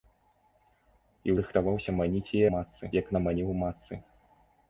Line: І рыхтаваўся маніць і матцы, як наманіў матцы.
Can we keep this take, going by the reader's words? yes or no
yes